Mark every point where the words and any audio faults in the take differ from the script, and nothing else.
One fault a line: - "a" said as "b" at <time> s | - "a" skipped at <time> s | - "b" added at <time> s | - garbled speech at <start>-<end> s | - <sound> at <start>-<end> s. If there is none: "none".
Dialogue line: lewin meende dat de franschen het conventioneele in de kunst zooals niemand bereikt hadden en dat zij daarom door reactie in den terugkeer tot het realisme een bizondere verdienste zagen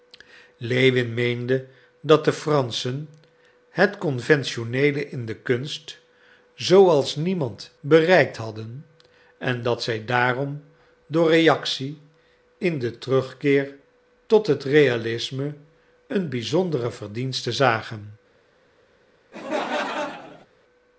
- laugh at 19.3-20.5 s